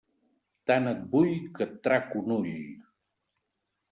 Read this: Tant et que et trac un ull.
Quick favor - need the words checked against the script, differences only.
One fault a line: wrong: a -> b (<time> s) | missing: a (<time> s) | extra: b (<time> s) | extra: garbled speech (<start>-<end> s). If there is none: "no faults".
extra: vull (1.1 s)